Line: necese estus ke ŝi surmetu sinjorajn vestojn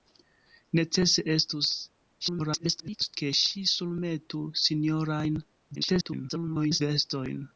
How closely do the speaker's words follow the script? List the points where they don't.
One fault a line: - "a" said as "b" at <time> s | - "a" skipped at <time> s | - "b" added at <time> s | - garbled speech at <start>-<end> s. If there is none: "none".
- garbled speech at 2.2-3.2 s
- garbled speech at 5.7-6.8 s